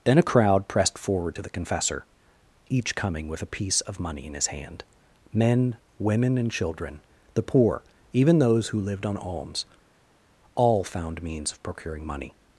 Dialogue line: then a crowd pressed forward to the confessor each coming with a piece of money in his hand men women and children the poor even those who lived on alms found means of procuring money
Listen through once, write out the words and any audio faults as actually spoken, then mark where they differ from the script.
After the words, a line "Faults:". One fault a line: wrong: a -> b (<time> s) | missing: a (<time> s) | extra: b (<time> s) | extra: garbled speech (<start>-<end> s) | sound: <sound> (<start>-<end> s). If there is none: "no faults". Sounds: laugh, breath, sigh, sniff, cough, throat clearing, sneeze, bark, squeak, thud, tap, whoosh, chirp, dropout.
then a crowd pressed forward to the confessor each coming with a piece of money in his hand men women and children the poor even those who lived on alms all found means of procuring money
Faults:
extra: all (10.6 s)